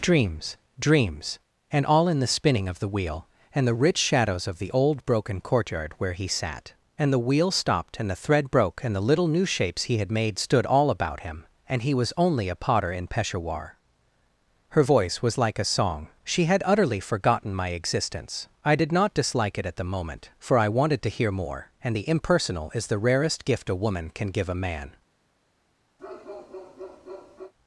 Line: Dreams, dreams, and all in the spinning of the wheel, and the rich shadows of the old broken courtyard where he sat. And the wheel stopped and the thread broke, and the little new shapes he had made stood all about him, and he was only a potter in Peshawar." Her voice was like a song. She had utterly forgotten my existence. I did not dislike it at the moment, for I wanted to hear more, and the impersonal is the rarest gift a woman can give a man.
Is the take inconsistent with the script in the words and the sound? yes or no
yes